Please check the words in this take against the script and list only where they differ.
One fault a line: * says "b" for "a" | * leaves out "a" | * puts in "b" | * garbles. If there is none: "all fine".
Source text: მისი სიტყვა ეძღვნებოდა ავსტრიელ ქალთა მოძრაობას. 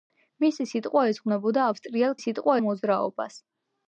* says "სიტყვა" for "ქალთა"